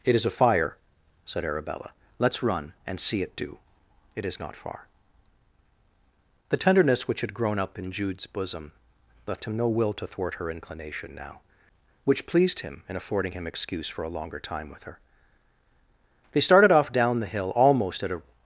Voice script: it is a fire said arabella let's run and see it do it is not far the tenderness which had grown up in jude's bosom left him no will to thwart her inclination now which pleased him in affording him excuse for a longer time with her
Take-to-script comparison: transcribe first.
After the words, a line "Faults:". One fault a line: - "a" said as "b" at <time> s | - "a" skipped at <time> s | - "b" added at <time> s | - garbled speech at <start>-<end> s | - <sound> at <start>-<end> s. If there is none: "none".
it is a fire said arabella let's run and see it do it is not far the tenderness which had grown up in jude's bosom left him no will to thwart her inclination now which pleased him in affording him excuse for a longer time with her they started off down the hill almost at a
Faults:
- "they started off down the hill almost at a" added at 16.3 s